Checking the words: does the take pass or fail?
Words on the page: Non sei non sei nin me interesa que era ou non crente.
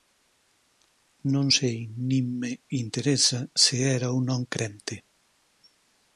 fail